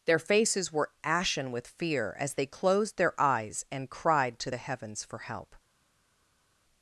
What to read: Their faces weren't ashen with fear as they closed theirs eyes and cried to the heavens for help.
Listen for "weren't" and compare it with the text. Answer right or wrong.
wrong